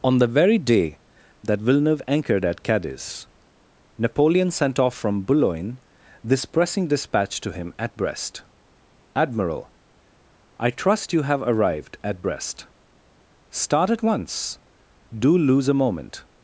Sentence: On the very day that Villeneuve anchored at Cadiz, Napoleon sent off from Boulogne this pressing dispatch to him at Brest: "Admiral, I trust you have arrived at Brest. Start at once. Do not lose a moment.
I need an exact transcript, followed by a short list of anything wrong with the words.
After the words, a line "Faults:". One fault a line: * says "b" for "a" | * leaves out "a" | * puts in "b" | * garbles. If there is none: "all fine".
On the very day that Villeneuve anchored at Cadiz, Napoleon sent off from Boulogne this pressing dispatch to him at Brest: "Admiral, I trust you have arrived at Brest. Start at once. Do lose a moment.
Faults:
* leaves out "not"